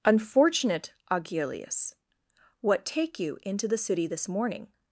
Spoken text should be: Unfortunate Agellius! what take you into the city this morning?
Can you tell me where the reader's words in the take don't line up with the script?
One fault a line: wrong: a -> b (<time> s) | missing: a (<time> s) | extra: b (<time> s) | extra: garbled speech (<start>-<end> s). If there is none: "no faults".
no faults